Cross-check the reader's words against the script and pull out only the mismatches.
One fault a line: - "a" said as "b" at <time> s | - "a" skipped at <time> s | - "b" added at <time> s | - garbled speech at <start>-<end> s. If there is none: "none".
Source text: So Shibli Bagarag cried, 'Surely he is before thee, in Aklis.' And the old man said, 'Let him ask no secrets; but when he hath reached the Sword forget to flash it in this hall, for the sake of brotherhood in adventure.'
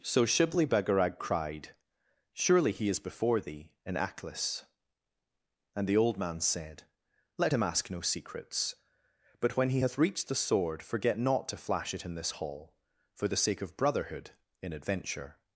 - "not" added at 11.2 s